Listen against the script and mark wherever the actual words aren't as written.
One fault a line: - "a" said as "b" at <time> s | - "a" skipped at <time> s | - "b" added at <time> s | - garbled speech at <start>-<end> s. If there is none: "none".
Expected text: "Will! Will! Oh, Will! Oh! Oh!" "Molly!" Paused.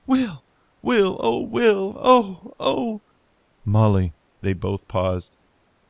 - "They both" added at 4.4 s